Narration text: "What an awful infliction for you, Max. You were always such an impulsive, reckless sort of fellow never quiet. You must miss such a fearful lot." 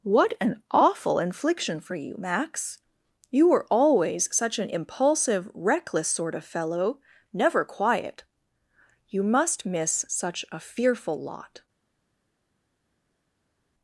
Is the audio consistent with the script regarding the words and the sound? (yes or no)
yes